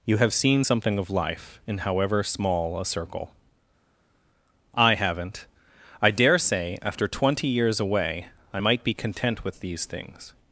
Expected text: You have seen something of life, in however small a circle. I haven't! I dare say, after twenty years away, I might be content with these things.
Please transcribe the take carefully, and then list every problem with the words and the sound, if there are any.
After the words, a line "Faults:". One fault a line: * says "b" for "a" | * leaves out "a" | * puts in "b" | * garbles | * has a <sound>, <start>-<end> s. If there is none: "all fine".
You have seen something of life, in however small a circle. I haven't! I dare say, after twenty years away, I might be content with these things.
Faults:
all fine